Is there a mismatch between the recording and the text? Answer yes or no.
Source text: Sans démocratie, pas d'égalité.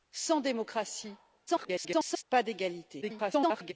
yes